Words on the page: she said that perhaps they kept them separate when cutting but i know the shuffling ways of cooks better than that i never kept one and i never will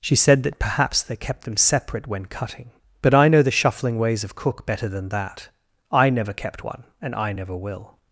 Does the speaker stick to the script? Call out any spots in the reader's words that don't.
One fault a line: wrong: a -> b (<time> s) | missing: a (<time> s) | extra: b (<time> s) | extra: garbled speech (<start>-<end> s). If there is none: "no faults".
wrong: cooks -> cook (4.3 s)